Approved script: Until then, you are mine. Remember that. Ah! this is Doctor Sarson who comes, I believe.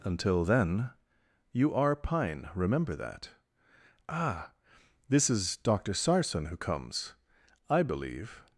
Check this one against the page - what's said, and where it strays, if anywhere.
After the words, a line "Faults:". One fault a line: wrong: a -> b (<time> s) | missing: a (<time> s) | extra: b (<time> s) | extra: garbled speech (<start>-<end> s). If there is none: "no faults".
Until then, you are pine. Remember that. Ah! this is Doctor Sarson who comes, I believe.
Faults:
wrong: mine -> pine (2.0 s)